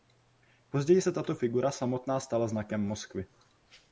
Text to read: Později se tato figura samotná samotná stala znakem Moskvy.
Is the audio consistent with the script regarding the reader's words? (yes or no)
no